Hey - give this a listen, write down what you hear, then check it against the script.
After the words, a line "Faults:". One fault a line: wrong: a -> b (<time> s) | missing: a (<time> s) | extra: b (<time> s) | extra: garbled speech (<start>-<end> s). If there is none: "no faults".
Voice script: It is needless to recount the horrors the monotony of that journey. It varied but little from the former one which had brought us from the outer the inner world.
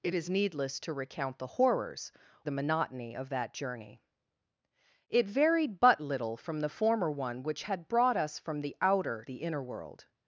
It is needless to recount the horrors the monotony of that journey. It varied but little from the former one which had brought us from the outer the inner world.
Faults:
no faults